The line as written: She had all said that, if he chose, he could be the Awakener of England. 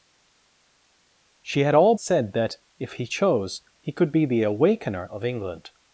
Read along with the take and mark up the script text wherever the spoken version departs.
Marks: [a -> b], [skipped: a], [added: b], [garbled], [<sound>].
She had all said that, if he chose, he could be the Awakener of England.